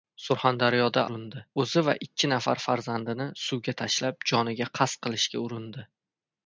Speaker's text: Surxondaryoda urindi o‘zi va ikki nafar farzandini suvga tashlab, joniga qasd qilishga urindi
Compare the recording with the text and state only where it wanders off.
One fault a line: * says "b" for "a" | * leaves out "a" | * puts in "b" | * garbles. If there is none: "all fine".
all fine